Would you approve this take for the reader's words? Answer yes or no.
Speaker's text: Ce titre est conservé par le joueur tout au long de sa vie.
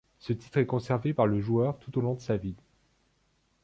yes